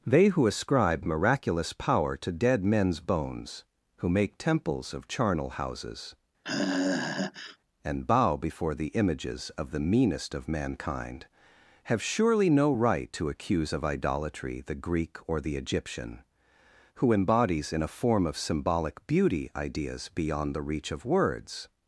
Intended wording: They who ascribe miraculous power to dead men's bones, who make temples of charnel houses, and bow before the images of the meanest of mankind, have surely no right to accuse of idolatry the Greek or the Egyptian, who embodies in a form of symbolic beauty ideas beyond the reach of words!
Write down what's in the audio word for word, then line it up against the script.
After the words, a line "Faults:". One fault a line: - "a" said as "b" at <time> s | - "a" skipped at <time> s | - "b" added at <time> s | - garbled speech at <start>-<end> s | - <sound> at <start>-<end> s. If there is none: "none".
They who ascribe miraculous power to dead men's bones, who make temples of charnel houses, and bow before the images of the meanest of mankind, have surely no right to accuse of idolatry the Greek or the Egyptian, who embodies in a form of symbolic beauty ideas beyond the reach of words!
Faults:
- sigh at 6.4-7.6 s